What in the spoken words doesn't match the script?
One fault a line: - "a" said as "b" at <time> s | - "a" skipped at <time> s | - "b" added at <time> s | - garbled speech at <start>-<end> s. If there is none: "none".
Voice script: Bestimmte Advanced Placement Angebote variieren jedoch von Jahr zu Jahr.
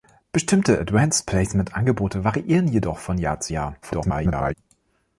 - garbled speech at 3.8-4.5 s